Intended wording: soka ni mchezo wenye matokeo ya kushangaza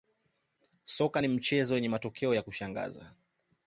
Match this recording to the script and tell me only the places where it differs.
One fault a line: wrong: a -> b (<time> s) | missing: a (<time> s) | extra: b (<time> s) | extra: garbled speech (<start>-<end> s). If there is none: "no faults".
no faults